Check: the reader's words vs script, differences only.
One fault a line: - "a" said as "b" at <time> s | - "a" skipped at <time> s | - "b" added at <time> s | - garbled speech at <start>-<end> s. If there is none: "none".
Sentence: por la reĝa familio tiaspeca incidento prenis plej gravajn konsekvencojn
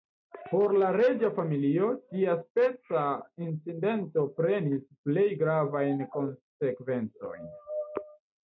none